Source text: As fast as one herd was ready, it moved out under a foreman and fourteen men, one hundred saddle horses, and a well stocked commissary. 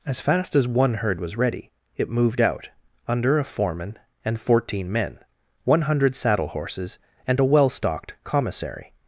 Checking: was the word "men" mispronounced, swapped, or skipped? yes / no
no